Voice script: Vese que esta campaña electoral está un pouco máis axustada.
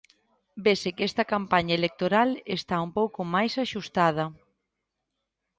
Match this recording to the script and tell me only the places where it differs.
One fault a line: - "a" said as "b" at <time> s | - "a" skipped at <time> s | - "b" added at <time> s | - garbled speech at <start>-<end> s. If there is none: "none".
none